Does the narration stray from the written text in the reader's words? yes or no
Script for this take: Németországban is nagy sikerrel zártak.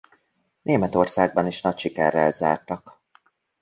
no